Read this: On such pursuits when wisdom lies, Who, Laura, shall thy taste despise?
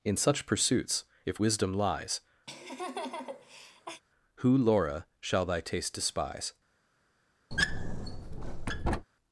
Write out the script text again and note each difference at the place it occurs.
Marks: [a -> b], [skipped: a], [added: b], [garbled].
[On -> In] such pursuits [when -> if] wisdom lies, Who, Laura, shall thy taste despise?